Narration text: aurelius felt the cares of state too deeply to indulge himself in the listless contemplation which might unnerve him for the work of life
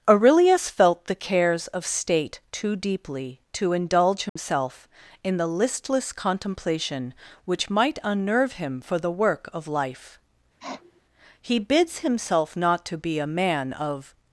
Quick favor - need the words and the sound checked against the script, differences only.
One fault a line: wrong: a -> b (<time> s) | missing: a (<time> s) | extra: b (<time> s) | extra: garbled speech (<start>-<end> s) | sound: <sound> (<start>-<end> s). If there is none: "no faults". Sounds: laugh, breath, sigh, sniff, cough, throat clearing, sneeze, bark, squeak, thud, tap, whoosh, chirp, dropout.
sound: dropout (4.3-4.4 s)
sound: sniff (10.6-11.0 s)
extra: he bids himself not to be a man of (11.4 s)